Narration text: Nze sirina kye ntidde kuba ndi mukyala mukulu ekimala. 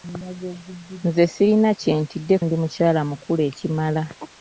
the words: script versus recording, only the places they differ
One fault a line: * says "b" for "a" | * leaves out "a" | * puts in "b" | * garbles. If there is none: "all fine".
* leaves out "kuba"